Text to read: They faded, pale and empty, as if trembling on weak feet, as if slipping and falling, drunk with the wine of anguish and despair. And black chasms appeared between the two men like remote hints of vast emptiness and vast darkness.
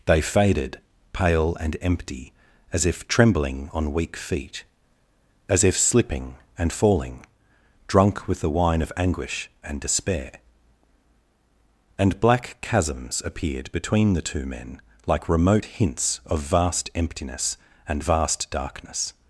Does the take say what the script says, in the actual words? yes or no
yes